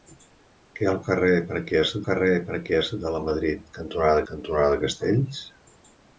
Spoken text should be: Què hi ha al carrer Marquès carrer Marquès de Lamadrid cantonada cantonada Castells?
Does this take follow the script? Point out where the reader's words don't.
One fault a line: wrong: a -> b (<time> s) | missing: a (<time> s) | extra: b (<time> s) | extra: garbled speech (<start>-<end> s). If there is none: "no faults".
no faults